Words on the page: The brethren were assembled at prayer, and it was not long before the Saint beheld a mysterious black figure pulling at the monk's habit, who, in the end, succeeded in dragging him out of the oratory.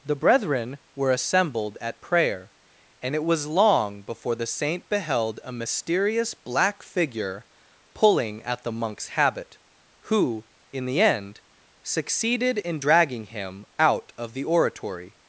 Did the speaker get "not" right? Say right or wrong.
wrong